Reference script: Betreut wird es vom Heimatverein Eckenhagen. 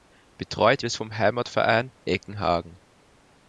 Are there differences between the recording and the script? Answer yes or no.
yes